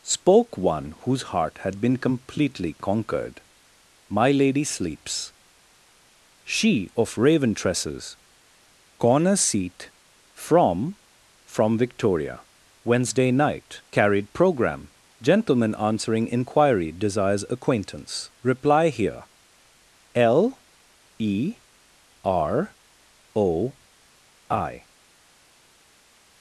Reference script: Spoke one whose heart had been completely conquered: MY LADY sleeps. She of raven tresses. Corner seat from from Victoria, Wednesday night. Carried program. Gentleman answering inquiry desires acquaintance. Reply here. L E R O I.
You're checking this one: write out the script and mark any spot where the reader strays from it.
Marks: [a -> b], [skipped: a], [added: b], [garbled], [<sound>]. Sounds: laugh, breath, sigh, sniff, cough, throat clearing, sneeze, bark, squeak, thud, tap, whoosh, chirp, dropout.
Spoke one whose heart had been completely conquered: MY LADY sleeps. She of raven tresses. Corner seat from from Victoria, Wednesday night. Carried program. Gentleman answering inquiry desires acquaintance. Reply here. L E R O I.